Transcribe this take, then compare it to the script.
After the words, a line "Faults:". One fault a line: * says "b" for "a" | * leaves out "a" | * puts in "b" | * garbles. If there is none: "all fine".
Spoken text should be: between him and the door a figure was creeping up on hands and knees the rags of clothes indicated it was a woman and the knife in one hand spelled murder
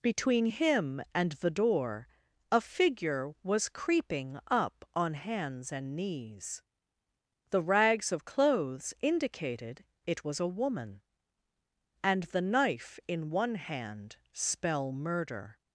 between him and the door a figure was creeping up on hands and knees the rags of clothes indicated it was a woman and the knife in one hand spell murder
Faults:
* says "spell" for "spelled"